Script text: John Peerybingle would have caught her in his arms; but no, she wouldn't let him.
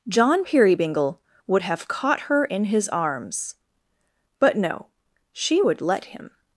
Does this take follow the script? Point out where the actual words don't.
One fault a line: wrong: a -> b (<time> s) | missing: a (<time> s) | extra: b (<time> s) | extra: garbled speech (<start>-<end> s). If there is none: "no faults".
wrong: wouldn't -> would (5.6 s)